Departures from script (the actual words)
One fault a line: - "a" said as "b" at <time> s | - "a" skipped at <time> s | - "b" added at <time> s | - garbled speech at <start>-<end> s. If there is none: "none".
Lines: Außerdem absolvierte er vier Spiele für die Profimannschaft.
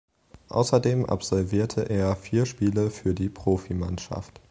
none